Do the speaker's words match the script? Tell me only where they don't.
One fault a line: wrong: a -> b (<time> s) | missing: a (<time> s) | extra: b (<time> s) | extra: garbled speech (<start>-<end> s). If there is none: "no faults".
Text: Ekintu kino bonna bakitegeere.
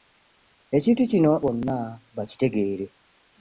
no faults